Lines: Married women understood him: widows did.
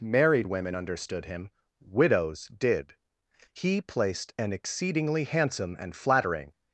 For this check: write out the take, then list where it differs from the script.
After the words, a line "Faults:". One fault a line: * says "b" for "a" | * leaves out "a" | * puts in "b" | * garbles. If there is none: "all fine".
Married women understood him: widows did. He placed an exceedingly handsome and flattering
Faults:
* puts in "He placed an exceedingly handsome and flattering"